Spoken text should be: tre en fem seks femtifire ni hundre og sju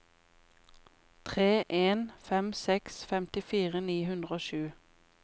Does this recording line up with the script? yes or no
yes